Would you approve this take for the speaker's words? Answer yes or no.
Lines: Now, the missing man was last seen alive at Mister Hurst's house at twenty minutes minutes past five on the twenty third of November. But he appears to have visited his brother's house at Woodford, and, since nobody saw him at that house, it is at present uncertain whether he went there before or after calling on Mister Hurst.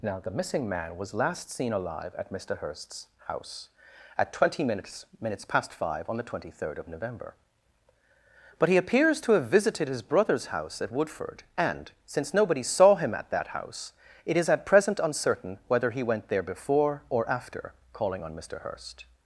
yes